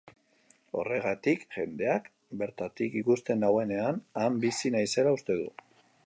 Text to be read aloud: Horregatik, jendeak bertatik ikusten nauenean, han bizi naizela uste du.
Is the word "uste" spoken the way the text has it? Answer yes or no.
yes